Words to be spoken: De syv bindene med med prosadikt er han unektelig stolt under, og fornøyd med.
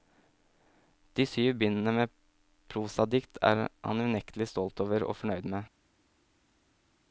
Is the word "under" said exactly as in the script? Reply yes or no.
no